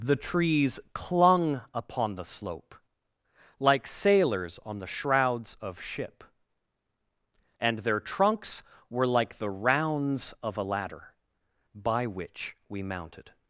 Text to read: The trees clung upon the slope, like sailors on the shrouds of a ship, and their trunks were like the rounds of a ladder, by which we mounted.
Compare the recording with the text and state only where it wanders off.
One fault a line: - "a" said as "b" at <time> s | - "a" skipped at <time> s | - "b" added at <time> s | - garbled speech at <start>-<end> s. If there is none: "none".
- "a" skipped at 5.8 s